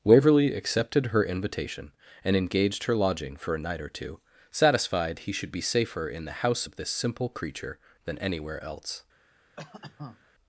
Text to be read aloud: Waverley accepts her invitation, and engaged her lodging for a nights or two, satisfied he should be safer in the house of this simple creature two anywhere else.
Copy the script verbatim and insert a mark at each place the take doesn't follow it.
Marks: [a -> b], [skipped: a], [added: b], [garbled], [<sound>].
Waverley [accepts -> accepted] her invitation, and engaged her lodging for a [nights -> night] or two, satisfied he should be safer in the house of this simple creature [two -> than] anywhere else. [cough]